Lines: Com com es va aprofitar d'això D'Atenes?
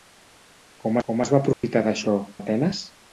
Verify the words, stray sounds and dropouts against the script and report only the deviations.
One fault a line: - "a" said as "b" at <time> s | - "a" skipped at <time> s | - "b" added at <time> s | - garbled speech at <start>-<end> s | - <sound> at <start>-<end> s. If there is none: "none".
- dropout at 1.5-1.6 s